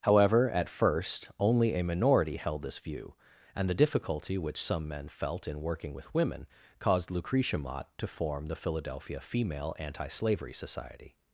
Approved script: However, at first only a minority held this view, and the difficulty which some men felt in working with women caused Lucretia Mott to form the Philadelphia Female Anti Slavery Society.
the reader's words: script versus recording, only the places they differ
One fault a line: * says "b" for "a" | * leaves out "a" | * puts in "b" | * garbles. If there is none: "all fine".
all fine